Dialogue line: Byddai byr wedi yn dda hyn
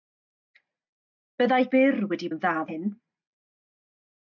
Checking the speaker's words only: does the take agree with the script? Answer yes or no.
yes